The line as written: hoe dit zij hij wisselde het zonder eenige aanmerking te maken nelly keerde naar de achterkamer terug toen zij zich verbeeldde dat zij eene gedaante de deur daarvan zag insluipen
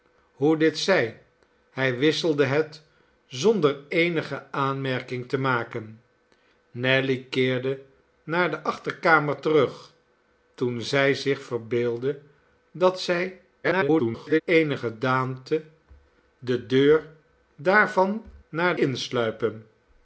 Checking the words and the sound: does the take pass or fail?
fail